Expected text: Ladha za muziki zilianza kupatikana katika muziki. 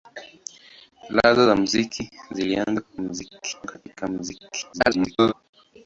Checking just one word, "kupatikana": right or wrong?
wrong